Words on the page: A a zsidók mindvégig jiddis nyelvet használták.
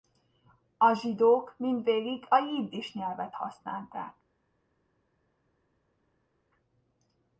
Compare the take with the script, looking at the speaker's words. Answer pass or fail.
fail